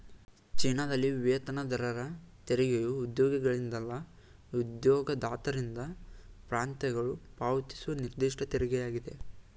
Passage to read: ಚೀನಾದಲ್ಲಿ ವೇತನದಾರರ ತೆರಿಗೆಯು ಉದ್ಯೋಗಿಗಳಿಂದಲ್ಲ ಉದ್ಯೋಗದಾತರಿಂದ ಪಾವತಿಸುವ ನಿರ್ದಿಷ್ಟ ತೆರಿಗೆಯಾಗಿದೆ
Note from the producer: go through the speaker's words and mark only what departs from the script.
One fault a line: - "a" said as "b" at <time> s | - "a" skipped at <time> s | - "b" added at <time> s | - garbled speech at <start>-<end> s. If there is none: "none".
- "ಪ್ರಾಂತ್ಯಗಳು" added at 6.5 s